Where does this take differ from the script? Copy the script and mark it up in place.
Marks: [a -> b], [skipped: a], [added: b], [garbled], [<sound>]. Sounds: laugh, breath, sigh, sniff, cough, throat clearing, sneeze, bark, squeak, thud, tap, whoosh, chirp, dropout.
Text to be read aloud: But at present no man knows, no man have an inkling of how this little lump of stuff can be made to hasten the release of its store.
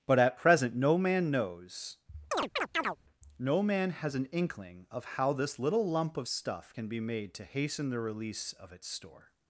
But at present no man knows, [chirp] no man [have -> has] an inkling of how this little lump of stuff can be made to hasten the release of its store.